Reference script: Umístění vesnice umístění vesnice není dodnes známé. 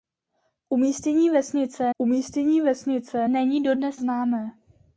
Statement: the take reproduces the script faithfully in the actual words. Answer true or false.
true